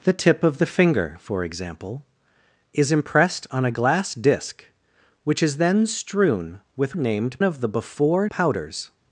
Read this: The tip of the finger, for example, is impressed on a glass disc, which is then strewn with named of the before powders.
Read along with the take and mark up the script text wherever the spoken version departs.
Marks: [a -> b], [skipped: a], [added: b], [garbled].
The tip of the finger, for example, is impressed on a glass disc, which is then strewn with named of the before powders.